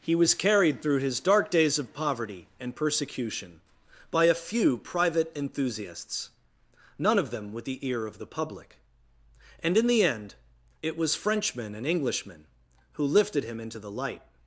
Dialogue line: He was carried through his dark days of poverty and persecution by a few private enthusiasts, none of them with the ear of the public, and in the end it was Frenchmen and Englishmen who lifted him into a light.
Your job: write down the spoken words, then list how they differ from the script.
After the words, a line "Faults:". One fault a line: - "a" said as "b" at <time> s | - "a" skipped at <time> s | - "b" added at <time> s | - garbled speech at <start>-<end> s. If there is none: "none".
He was carried through his dark days of poverty and persecution by a few private enthusiasts, none of them with the ear of the public, and in the end it was Frenchmen and Englishmen who lifted him into the light.
Faults:
- "a" said as "the" at 13.8 s